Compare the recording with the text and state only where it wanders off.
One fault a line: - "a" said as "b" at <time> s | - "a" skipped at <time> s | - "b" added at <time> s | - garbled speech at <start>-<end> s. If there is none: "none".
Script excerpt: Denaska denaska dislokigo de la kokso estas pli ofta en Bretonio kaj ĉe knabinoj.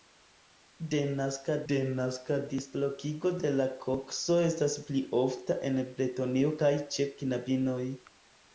none